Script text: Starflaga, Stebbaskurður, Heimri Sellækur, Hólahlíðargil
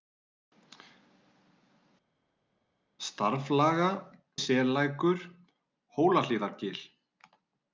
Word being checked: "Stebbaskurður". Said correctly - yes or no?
no